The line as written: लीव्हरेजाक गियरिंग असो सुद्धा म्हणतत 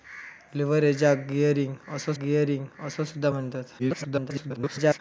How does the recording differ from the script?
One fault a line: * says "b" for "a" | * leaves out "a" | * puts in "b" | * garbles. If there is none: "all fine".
* puts in "गियरिंग असो"
* garbles